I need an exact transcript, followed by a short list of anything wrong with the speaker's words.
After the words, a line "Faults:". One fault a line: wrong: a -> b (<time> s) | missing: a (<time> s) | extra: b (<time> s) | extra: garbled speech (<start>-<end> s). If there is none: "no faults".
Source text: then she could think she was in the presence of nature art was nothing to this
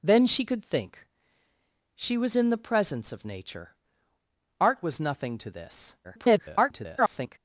then she could think she was in the presence of nature art was nothing to this [garbled]
Faults:
extra: garbled speech (6.0-7.4 s)